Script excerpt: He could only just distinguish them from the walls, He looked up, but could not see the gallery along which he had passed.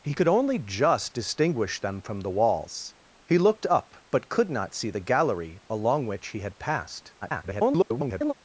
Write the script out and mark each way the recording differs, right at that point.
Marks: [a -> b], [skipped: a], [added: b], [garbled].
He could only just distinguish them from the walls, He looked up, but could not see the gallery along which he had passed. [garbled]